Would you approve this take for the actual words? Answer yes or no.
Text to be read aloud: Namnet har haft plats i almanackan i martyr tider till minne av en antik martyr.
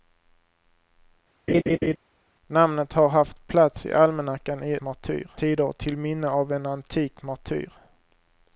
yes